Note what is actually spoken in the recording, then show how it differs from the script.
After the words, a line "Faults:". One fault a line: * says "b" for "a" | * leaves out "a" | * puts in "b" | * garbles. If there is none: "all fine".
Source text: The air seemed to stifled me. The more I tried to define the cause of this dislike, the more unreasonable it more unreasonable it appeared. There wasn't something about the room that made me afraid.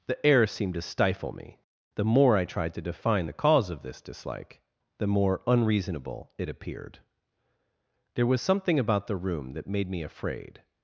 The air seemed to stifle me. The more I tried to define the cause of this dislike, the more unreasonable it appeared. There was something about the room that made me afraid.
Faults:
* says "stifle" for "stifled"
* leaves out "more unreasonable it"
* says "was" for "wasn't"